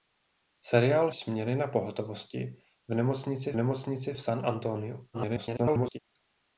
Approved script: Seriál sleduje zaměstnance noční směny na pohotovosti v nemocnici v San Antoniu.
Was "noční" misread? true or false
true